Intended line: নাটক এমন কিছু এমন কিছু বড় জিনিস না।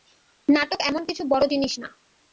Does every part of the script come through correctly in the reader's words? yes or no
no